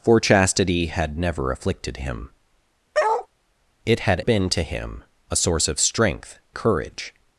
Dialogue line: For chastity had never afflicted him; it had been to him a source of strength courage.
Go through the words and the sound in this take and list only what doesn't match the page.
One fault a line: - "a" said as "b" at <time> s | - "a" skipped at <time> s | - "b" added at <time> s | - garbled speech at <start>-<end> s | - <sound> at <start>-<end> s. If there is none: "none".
- bark at 2.9-3.3 s